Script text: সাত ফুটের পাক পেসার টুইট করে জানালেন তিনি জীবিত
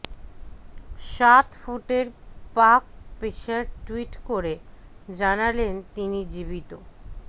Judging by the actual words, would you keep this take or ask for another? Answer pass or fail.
pass